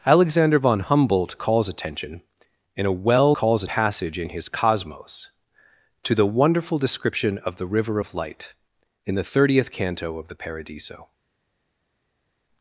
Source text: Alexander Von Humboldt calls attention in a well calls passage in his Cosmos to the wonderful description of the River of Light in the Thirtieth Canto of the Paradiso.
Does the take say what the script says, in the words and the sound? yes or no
yes